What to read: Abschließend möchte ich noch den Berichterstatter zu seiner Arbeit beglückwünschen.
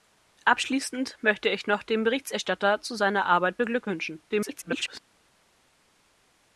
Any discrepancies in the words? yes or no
yes